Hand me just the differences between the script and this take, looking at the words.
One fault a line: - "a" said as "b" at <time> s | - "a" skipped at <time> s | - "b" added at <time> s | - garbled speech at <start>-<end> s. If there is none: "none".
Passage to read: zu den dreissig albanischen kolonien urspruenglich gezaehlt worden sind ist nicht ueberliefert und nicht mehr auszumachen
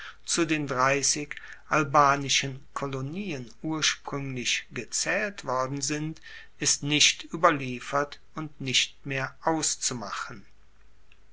none